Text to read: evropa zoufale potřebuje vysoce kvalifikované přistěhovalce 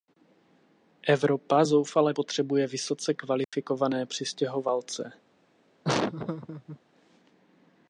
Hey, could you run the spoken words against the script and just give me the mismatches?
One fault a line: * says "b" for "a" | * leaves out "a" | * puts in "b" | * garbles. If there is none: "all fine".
all fine